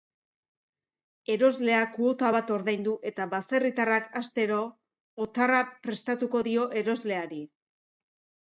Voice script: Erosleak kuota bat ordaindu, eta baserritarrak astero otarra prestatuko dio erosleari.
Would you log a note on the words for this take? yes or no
no